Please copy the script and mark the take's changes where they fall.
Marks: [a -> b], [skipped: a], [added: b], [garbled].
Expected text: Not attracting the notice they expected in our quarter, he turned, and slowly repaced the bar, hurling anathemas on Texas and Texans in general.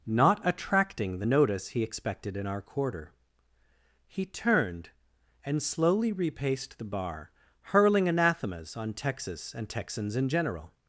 Not attracting the notice [they -> he] expected in our quarter, he turned, and slowly repaced the bar, hurling anathemas on Texas and Texans in general.